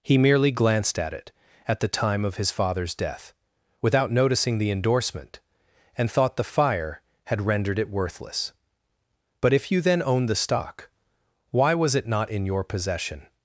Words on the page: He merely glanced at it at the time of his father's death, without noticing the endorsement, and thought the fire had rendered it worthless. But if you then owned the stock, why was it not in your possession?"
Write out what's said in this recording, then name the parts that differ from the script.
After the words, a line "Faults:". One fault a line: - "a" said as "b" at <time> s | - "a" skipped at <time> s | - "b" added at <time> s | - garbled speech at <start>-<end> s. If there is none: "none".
He merely glanced at it at the time of his father's death, without noticing the endorsement, and thought the fire had rendered it worthless. But if you then owned the stock, why was it not in your possession?"
Faults:
none